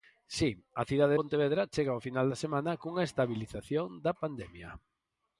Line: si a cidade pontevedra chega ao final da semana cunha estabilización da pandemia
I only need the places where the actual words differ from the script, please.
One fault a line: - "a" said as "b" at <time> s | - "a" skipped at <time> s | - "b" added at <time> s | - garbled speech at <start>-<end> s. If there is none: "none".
none